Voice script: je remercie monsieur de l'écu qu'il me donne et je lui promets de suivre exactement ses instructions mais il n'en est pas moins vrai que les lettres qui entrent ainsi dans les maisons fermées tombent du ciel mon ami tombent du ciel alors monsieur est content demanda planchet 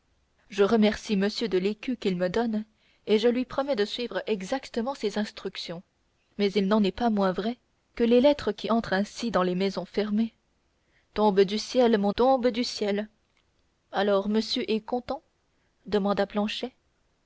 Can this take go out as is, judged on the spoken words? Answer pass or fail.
fail